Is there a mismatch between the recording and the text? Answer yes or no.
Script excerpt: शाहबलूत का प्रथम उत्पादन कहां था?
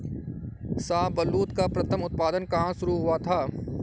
yes